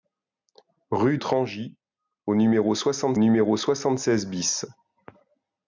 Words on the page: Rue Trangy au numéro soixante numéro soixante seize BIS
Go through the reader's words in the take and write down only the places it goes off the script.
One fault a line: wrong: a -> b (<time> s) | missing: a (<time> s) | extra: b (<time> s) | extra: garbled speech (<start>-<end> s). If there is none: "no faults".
no faults